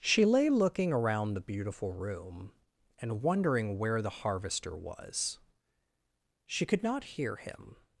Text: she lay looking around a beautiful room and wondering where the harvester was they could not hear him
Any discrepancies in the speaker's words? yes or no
yes